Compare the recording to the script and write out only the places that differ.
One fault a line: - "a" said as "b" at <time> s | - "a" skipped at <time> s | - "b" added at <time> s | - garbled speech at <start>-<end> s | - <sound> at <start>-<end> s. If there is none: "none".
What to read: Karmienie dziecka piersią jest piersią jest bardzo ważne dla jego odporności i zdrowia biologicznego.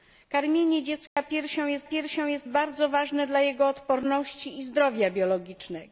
- dropout at 1.1-1.2 s